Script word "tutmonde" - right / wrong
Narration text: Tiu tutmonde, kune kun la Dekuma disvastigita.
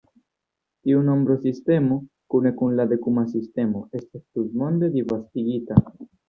wrong